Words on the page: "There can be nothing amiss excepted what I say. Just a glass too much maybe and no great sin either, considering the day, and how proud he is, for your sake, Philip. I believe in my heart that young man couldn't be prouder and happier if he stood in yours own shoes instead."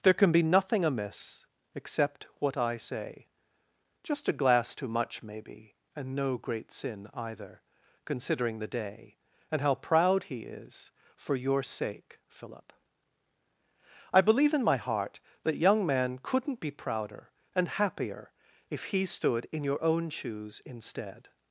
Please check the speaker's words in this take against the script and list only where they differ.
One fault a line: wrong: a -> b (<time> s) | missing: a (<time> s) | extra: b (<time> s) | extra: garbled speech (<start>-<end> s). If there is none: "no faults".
wrong: excepted -> except (1.8 s)
wrong: yours -> your (19.6 s)